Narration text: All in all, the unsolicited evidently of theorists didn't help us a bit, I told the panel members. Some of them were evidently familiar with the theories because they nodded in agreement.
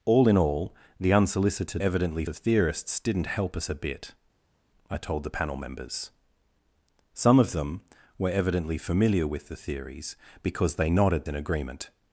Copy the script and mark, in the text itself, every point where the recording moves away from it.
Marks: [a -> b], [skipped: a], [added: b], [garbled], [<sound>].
All in all, the unsolicited evidently of theorists didn't help us a bit, I told the panel members. Some of them were evidently familiar with the theories because they nodded in agreement.